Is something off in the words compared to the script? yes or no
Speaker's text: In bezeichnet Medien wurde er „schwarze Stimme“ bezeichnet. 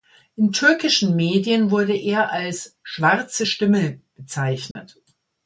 yes